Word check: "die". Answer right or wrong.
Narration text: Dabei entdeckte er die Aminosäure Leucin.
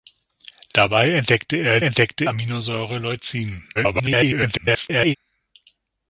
wrong